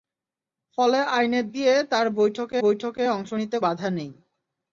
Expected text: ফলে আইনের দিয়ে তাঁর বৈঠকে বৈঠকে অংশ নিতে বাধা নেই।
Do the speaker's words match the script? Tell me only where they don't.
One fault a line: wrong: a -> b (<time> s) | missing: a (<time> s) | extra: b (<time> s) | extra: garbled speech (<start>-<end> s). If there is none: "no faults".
no faults